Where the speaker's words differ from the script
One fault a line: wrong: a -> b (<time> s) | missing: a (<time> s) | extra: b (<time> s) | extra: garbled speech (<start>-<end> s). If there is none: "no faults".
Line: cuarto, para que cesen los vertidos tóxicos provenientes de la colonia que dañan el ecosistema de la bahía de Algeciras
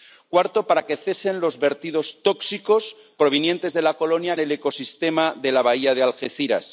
missing: que dañan (4.4 s)